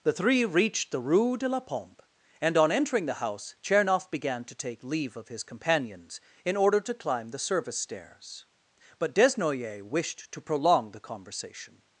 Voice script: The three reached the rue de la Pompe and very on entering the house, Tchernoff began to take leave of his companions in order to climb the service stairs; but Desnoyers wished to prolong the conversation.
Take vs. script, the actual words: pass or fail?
fail